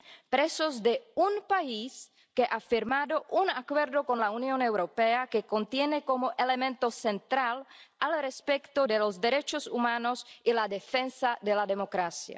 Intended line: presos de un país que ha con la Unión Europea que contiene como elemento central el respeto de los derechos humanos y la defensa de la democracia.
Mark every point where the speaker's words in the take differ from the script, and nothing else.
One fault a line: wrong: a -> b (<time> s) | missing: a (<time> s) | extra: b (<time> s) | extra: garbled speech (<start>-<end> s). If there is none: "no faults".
extra: firmado un Acuerdo (2.6 s)